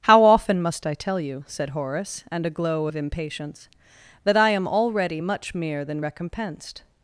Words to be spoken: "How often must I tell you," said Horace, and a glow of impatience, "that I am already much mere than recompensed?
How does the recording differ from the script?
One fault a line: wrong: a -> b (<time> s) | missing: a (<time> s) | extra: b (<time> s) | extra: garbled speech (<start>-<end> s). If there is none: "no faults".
no faults